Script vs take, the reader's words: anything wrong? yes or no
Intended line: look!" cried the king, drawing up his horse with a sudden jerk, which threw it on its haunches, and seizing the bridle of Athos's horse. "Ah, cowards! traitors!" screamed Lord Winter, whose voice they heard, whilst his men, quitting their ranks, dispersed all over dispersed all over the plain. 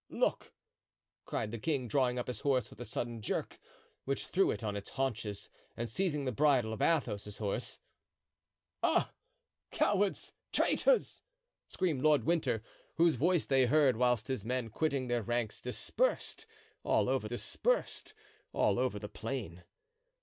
no